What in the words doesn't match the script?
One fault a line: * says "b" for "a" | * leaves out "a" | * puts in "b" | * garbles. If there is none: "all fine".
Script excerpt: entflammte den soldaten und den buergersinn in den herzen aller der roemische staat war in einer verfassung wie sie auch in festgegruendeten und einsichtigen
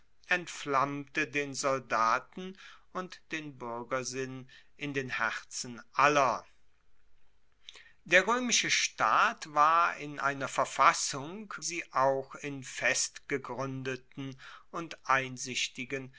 * leaves out "wie"